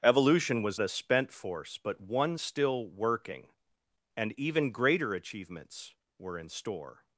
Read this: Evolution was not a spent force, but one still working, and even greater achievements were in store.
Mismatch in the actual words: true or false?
true